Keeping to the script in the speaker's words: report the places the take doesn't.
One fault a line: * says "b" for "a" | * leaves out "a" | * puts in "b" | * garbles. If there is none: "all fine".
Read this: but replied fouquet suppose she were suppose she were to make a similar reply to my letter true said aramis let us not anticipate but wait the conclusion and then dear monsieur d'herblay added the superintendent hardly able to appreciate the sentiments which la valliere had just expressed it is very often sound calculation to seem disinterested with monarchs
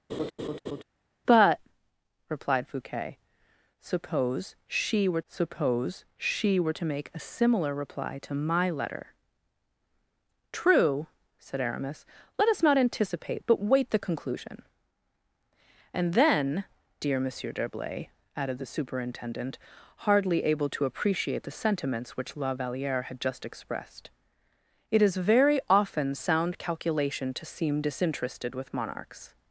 all fine